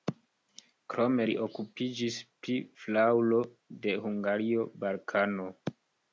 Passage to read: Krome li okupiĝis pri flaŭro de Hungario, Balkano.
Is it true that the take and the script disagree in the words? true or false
false